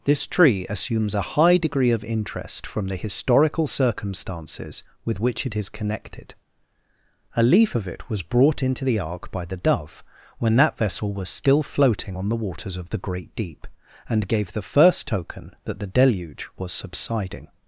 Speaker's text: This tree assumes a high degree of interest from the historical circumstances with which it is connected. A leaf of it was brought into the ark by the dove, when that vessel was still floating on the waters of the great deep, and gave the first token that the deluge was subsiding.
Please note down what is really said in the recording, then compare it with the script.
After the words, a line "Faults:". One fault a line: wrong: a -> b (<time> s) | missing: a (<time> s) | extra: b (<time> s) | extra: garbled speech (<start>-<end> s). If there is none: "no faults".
This tree assumes a high degree of interest from the historical circumstances with which it is connected. A leaf of it was brought into the ark by the dove, when that vessel was still floating on the waters of the great deep, and gave the first token that the deluge was subsiding.
Faults:
no faults